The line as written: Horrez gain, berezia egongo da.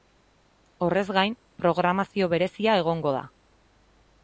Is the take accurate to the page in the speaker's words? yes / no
no